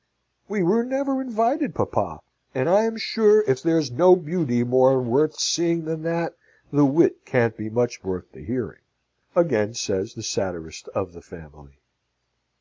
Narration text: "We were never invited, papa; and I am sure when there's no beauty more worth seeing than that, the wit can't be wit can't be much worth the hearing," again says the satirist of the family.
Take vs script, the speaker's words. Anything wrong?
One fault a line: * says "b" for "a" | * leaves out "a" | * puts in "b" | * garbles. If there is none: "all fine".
* says "if" for "when"
* leaves out "wit can't be"